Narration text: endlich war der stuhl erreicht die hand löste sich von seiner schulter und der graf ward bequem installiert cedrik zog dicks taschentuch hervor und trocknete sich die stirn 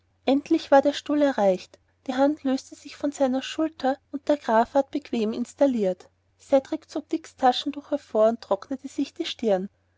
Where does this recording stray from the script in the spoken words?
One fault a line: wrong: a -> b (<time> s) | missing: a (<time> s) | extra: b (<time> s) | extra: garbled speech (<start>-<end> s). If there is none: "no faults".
no faults